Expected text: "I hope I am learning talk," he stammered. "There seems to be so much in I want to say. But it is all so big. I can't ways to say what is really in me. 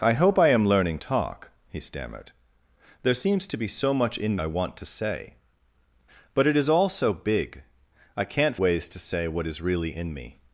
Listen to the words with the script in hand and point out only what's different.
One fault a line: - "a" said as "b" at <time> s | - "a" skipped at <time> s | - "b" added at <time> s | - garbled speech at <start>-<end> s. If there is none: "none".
none